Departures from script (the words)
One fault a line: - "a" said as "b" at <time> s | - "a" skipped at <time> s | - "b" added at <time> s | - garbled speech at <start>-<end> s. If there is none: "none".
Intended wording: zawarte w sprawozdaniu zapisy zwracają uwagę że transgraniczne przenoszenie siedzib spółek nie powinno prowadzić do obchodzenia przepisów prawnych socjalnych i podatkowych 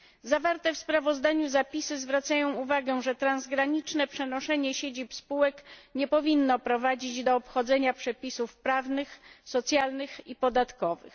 none